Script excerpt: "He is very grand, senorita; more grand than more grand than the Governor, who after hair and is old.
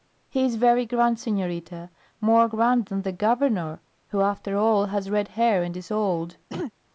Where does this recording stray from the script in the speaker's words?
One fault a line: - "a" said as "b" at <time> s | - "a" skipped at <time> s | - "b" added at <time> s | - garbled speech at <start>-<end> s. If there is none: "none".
- "more grand than" skipped at 3.0 s
- "all has red" added at 4.6 s